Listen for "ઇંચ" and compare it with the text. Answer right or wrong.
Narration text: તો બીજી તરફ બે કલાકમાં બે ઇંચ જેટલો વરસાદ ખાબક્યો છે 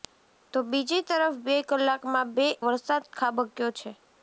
wrong